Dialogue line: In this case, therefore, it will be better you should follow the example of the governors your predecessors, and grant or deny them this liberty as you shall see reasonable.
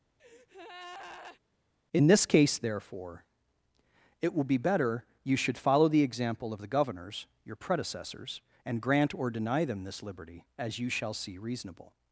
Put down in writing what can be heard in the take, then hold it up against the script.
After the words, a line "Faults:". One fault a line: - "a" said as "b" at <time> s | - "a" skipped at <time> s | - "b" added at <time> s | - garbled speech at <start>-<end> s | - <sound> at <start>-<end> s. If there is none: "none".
In this case, therefore, it will be better you should follow the example of the governors your predecessors, and grant or deny them this liberty as you shall see reasonable.
Faults:
- breath at 0.2-1.4 s